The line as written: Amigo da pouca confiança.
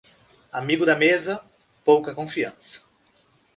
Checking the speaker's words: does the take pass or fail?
fail